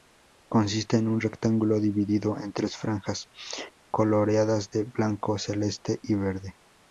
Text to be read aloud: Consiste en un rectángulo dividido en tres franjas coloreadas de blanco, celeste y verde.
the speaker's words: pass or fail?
pass